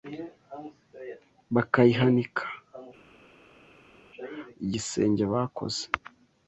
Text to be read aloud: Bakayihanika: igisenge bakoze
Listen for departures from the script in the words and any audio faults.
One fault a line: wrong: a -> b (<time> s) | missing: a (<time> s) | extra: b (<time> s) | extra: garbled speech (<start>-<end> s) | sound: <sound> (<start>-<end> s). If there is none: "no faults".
no faults